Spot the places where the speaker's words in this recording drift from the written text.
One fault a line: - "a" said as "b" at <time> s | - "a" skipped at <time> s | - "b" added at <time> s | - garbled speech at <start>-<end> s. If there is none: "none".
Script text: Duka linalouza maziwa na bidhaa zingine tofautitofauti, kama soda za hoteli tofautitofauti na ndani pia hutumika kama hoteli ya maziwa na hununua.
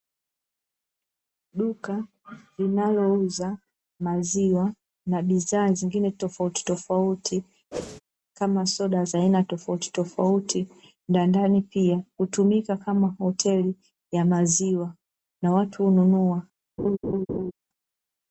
- "hoteli" said as "aina" at 9.2 s
- "watu" added at 15.5 s